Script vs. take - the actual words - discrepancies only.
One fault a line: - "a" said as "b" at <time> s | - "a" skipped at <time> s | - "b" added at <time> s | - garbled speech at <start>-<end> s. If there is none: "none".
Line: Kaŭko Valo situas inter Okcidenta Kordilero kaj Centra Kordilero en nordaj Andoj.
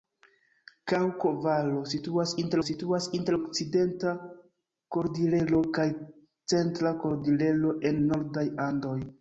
- "situas inter" added at 2.7 s